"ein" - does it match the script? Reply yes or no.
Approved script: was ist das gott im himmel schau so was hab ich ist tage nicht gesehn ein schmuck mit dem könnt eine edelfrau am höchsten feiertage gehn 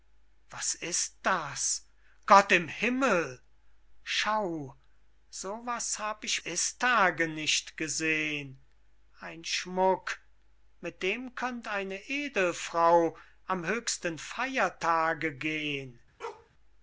yes